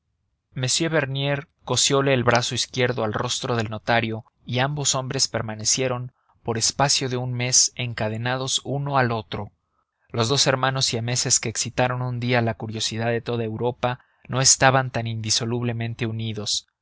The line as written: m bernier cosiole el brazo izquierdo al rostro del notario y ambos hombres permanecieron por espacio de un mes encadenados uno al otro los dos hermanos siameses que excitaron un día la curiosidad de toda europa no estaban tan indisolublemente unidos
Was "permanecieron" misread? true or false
false